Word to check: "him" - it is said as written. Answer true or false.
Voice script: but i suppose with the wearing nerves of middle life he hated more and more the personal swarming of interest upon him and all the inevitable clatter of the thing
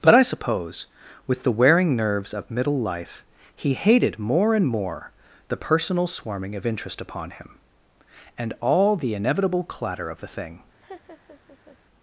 true